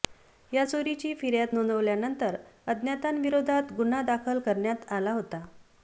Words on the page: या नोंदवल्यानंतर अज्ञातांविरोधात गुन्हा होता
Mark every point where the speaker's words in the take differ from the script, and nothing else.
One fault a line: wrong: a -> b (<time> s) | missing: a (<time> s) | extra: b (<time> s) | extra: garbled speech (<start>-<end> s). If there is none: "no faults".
extra: चोरीची फिर्याद (0.6 s)
extra: दाखल करण्यात आला (4.0 s)